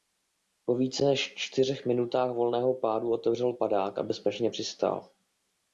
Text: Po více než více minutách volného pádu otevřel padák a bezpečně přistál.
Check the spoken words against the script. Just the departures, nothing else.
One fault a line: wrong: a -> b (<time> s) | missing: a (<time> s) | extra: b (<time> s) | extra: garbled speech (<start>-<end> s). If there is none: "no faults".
wrong: více -> čtyřech (1.4 s)